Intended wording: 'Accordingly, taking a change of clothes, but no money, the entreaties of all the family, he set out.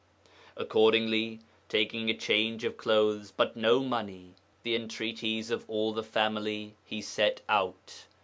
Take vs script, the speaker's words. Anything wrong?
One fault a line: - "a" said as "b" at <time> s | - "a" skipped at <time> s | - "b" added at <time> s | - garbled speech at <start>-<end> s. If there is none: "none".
none